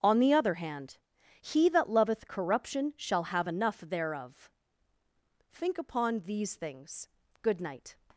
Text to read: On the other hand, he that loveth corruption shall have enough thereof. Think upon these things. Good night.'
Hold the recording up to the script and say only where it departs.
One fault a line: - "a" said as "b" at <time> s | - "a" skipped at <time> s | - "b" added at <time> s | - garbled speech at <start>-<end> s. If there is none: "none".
none